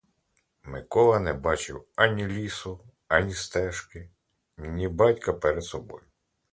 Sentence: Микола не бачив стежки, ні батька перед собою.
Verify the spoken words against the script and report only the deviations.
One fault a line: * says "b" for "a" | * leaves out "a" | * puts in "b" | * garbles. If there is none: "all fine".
* puts in "ані лісу ані"